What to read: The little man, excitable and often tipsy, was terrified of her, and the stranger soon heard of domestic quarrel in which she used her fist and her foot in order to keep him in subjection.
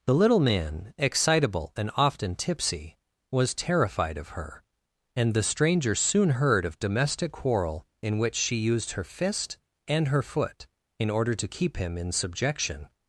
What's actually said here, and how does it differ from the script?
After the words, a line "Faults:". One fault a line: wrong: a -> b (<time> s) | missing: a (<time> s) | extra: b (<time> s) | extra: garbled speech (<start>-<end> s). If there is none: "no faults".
The little man, excitable and often tipsy, was terrified of her, and the stranger soon heard of domestic quarrel in which she used her fist and her foot in order to keep him in subjection.
Faults:
no faults